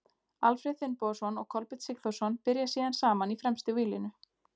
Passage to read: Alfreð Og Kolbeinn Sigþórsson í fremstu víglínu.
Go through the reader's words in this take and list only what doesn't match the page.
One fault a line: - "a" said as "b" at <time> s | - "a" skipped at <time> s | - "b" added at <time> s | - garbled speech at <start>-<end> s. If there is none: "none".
- "Finnbogason" added at 0.8 s
- "byrja síðan saman" added at 2.5 s